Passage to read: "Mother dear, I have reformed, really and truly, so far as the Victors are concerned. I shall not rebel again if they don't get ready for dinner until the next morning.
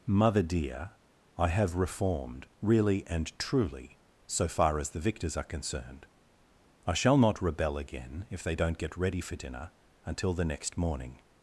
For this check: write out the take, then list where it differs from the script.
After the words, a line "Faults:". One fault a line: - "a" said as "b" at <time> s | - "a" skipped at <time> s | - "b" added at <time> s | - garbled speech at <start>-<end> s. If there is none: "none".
"Mother dear, I have reformed, really and truly, so far as the Victors are concerned. I shall not rebel again if they don't get ready for dinner until the next morning.
Faults:
none